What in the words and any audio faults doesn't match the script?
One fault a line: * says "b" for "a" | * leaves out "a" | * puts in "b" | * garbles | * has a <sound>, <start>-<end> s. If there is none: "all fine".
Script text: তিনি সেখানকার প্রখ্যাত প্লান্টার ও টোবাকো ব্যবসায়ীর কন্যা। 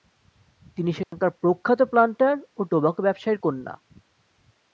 * has a dropout, 1.0-1.1 s